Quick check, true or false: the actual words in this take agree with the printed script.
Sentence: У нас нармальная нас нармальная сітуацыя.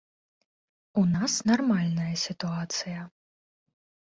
false